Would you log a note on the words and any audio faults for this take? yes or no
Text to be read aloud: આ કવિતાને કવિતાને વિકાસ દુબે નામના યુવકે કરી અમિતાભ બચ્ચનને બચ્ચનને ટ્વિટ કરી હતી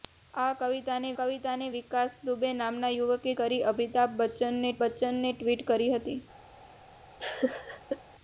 yes